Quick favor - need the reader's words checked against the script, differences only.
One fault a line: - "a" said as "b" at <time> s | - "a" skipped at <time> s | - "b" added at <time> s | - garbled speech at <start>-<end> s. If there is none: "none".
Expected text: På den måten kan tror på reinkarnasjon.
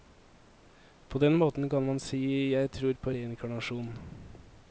- "man si jeg" added at 1.9 s